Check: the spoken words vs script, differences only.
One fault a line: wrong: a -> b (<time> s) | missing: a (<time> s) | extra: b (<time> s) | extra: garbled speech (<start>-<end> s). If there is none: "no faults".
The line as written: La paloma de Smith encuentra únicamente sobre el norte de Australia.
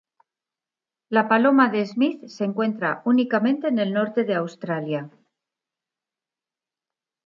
extra: se (2.2 s)
wrong: sobre -> en (3.7 s)